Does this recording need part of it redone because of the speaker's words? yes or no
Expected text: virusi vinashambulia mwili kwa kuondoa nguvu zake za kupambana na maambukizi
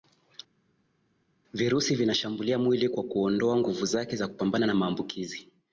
no